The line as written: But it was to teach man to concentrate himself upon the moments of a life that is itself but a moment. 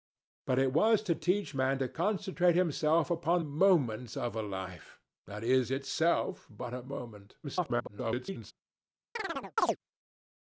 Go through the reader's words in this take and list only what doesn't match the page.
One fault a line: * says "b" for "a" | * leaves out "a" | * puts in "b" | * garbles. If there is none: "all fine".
* leaves out "the"
* garbles